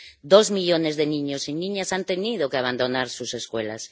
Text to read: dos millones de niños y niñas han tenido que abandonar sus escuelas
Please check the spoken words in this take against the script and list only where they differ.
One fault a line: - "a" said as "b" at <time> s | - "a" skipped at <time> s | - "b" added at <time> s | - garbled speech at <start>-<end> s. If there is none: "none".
none